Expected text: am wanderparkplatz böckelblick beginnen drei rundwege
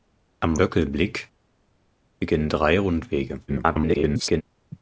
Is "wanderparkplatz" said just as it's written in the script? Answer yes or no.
no